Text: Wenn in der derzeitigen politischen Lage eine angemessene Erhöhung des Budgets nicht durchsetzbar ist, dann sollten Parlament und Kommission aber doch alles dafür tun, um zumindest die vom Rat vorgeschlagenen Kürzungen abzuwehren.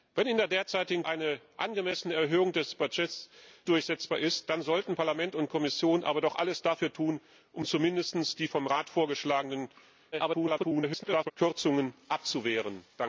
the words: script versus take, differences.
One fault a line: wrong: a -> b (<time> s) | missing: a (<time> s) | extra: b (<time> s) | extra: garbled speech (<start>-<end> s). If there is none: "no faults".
missing: politischen Lage (1.0 s)
missing: nicht (3.3 s)
extra: garbled speech (10.1-11.3 s)